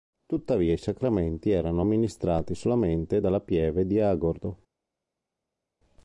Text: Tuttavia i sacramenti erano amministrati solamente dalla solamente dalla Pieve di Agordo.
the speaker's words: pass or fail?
fail